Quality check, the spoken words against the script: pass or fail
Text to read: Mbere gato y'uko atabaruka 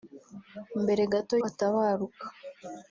fail